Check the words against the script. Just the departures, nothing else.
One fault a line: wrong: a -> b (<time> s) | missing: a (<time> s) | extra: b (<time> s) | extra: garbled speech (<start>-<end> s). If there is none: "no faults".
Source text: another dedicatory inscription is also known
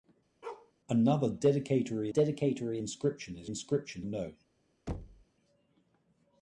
extra: dedicatory (2.1 s)
wrong: also -> inscription (3.5 s)